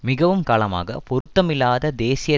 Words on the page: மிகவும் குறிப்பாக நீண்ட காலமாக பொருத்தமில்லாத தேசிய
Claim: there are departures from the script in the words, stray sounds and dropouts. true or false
true